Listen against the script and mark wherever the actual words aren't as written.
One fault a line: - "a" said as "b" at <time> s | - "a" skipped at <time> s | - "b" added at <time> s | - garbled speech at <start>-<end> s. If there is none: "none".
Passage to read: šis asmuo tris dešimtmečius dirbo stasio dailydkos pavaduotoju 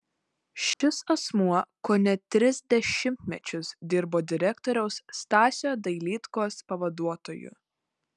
- "kone" added at 1.9 s
- "direktoriaus" added at 4.3 s